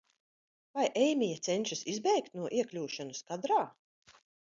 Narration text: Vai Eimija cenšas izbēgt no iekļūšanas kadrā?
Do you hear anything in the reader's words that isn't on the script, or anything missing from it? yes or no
no